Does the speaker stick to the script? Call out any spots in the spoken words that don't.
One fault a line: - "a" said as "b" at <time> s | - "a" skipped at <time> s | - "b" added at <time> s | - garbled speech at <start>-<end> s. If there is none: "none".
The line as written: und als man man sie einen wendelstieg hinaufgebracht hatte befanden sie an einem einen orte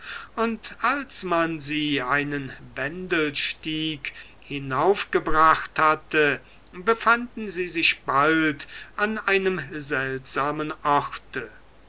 - "man" skipped at 1.6 s
- "sich bald" added at 7.7 s
- "einen" said as "seltsamen" at 9.7 s